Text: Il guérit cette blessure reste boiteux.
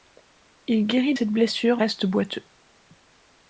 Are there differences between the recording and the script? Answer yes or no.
no